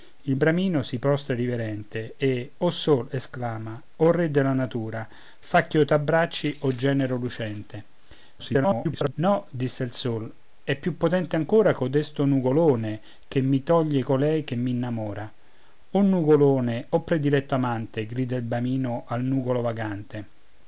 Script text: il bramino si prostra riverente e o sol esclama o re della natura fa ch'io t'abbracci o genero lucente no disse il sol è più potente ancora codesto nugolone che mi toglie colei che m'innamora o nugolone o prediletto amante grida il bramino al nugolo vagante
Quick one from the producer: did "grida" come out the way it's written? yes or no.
yes